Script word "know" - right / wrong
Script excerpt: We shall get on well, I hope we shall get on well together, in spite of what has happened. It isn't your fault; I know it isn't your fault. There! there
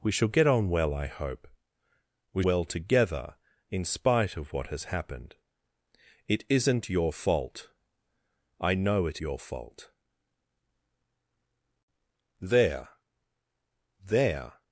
right